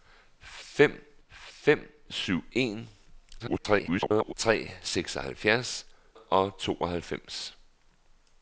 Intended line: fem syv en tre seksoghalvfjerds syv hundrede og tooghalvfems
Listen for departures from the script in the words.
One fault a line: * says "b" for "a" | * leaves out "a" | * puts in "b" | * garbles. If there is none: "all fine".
* puts in "fem"
* garbles
* leaves out "syv hundrede"